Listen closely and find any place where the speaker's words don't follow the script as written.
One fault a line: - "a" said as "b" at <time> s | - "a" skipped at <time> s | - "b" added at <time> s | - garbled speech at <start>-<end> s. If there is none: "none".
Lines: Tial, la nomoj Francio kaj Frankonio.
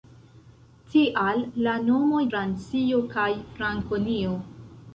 none